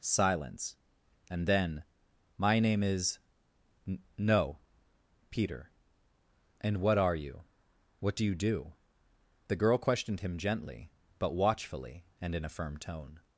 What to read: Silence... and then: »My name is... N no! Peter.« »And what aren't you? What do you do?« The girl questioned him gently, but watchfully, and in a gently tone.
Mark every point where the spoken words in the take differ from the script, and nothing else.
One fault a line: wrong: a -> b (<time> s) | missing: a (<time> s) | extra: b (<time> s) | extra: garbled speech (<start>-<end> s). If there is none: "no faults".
wrong: aren't -> are (7.0 s)
wrong: gently -> firm (12.5 s)